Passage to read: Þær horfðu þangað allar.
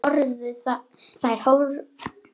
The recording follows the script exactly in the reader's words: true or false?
true